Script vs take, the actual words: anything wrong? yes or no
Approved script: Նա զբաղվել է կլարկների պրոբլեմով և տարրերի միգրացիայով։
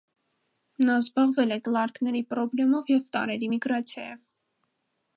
no